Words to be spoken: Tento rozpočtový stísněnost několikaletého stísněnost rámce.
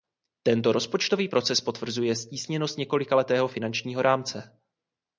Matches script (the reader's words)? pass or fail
fail